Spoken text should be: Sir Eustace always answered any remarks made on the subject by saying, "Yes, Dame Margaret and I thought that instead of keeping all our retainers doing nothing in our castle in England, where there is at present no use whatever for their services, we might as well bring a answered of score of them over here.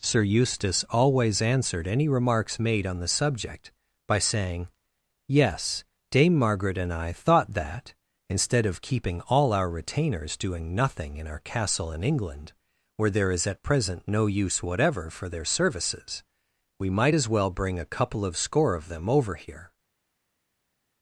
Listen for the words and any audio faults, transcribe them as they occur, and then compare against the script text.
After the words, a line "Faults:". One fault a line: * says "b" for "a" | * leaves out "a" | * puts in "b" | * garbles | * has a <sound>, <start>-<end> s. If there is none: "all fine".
Sir Eustace always answered any remarks made on the subject by saying, "Yes, Dame Margaret and I thought that instead of keeping all our retainers doing nothing in our castle in England, where there is at present no use whatever for their services, we might as well bring a couple of score of them over here.
Faults:
* says "couple" for "answered"